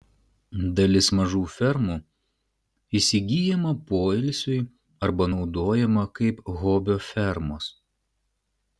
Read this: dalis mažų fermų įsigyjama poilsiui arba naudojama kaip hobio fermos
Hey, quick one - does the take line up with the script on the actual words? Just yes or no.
yes